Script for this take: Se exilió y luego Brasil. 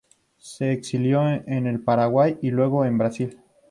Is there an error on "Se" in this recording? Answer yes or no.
no